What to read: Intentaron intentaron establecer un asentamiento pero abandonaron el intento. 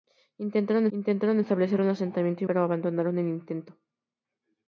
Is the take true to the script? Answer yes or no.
yes